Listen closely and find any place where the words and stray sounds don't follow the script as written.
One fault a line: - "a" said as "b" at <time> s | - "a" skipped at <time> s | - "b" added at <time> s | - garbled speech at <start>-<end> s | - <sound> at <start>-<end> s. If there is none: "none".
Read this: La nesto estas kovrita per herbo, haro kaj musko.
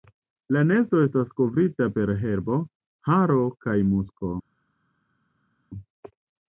none